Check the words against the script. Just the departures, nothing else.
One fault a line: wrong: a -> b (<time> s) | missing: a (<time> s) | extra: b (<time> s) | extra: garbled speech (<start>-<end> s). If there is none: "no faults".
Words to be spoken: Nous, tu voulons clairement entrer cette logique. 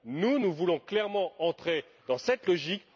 wrong: tu -> nous (0.4 s)
extra: dans (2.1 s)